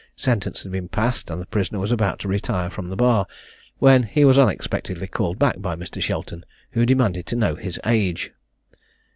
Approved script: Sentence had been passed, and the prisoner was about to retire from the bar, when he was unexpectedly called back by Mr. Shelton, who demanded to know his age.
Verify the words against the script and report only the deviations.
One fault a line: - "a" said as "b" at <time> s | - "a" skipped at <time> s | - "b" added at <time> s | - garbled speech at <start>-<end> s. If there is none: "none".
none